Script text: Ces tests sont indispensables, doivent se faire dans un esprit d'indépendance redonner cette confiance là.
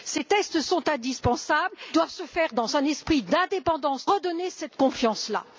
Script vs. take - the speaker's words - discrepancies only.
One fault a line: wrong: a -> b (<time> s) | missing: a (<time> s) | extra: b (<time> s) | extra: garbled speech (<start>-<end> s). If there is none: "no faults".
no faults